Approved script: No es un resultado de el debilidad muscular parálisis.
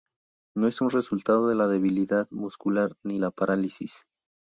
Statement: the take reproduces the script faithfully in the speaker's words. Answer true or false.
false